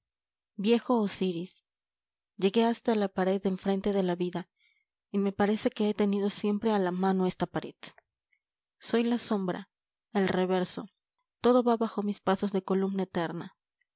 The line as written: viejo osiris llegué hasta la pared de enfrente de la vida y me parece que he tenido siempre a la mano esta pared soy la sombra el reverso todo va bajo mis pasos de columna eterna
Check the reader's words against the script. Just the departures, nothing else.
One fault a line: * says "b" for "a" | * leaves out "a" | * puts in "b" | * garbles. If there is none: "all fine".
all fine